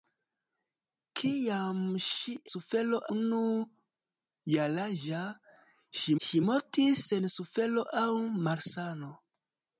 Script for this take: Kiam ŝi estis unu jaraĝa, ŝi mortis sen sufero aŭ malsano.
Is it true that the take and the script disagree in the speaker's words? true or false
true